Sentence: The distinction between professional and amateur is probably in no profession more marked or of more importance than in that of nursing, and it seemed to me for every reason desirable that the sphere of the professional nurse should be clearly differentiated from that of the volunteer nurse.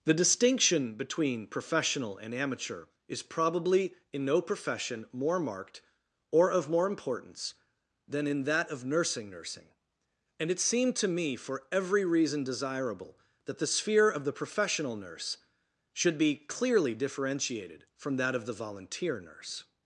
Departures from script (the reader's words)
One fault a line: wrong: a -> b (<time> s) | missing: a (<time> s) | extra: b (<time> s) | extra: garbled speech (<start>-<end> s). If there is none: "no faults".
extra: nursing (9.3 s)